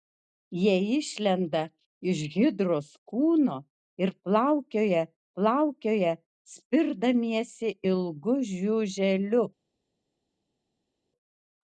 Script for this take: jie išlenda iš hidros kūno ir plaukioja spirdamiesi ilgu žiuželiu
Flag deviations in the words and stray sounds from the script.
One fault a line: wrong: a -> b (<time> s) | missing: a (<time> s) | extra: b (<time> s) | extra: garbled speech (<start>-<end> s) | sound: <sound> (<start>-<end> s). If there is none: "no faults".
extra: plaukioja (5.4 s)